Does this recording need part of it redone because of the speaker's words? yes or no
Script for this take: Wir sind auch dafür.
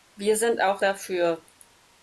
no